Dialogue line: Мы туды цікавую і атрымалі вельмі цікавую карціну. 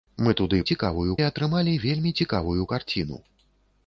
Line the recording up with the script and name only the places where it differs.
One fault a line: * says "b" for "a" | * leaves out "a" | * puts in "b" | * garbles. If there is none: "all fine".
all fine